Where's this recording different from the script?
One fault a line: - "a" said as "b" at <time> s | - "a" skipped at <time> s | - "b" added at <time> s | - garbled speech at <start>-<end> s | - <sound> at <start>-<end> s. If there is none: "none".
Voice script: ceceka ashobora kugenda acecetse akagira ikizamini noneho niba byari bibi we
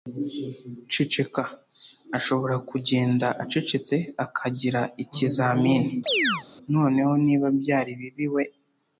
- chirp at 6.1-6.4 s